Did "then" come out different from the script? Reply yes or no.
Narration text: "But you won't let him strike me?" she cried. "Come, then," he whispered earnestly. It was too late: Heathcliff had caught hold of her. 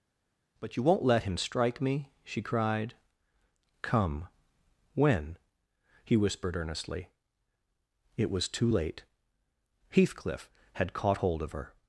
yes